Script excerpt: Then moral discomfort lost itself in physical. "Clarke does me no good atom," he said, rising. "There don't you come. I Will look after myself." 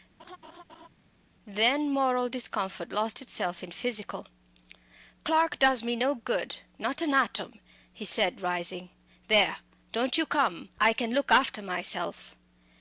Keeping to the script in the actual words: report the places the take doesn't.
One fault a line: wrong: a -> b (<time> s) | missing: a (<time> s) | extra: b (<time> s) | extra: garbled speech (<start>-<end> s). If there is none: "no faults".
extra: not an (6.8 s)
wrong: Will -> Can (10.9 s)